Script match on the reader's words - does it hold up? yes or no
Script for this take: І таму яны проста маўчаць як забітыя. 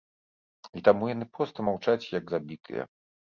yes